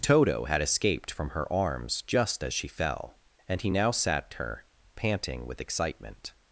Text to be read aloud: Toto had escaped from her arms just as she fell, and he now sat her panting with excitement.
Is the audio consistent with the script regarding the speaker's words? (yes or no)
yes